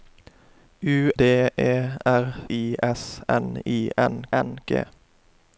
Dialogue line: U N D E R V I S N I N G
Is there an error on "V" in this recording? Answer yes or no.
yes